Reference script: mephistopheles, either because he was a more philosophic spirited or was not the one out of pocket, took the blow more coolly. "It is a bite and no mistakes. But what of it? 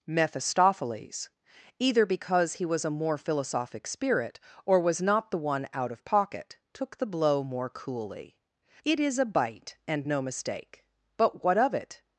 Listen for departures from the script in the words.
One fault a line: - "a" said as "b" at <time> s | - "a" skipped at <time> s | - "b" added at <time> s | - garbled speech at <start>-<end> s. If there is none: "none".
- "spirited" said as "spirit" at 3.9 s
- "mistakes" said as "mistake" at 10.2 s